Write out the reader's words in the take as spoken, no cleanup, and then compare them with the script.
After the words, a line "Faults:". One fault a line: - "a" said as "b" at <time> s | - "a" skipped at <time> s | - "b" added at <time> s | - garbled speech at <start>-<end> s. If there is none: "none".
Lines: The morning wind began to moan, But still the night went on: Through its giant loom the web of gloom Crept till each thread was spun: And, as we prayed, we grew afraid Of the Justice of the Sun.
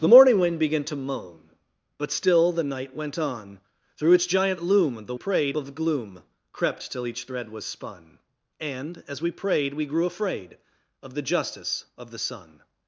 The morning wind began to moan, But still the night went on: Through its giant loom the prayed of gloom Crept till each thread was spun: And, as we prayed, we grew afraid Of the Justice of the Sun.
Faults:
- "web" said as "prayed" at 5.1 s